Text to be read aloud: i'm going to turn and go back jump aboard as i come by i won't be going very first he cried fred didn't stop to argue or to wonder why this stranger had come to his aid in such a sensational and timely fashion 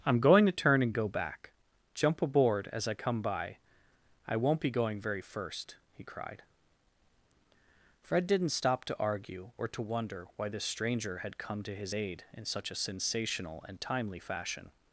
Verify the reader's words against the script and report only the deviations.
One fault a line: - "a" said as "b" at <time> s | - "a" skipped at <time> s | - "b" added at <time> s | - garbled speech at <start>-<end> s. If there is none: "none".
none